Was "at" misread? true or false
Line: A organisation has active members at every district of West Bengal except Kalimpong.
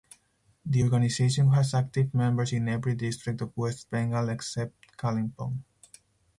true